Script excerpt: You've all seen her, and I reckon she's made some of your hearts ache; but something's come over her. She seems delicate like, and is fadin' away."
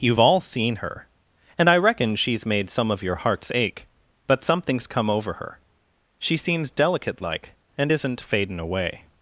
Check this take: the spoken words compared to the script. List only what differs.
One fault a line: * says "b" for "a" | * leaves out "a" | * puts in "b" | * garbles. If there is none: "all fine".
* says "isn't" for "is"